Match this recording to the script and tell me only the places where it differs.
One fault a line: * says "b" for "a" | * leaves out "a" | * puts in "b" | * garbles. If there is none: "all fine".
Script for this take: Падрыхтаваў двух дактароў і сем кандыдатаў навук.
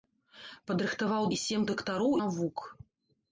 * leaves out "двух дактароў"
* says "дактароў" for "кандыдатаў"